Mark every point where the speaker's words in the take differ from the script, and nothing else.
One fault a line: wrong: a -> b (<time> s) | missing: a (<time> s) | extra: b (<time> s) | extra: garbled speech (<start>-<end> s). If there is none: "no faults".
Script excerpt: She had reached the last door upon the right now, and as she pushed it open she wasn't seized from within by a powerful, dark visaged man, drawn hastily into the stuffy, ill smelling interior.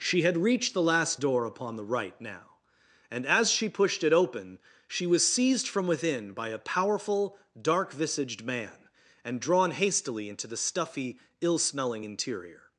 wrong: wasn't -> was (5.0 s)
extra: and (9.2 s)